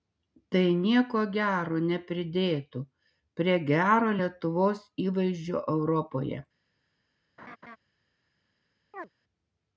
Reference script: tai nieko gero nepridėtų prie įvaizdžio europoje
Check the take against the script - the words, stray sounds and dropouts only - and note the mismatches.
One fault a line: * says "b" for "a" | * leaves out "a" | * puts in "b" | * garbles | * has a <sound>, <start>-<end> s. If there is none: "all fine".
* puts in "gero lietuvos"
* has a laugh, 7.4-7.8 s
* has a chirp, 8.9-9.1 s